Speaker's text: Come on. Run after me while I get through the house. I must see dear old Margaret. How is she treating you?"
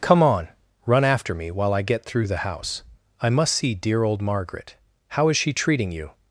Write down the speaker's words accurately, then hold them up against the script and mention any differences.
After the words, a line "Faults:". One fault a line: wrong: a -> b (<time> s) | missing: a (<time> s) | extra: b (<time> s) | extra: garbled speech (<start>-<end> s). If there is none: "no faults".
Come on. Run after me while I get through the house. I must see dear old Margaret. How is she treating you?"
Faults:
no faults